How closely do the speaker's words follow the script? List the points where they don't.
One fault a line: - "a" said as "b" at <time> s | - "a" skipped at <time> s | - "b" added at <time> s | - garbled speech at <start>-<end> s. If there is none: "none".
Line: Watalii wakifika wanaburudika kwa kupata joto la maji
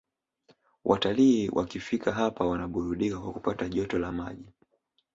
- "hapa" added at 2.1 s